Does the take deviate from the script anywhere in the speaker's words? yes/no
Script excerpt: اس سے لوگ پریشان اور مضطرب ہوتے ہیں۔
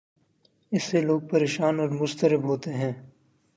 no